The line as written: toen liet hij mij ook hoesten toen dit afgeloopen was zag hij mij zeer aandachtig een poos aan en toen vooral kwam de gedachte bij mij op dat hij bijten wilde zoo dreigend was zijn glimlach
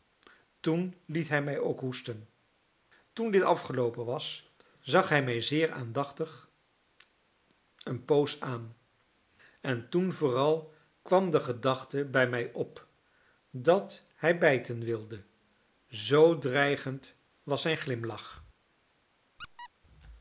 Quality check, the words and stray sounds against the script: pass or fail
fail